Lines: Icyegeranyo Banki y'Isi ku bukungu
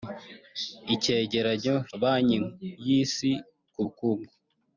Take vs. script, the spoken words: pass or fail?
pass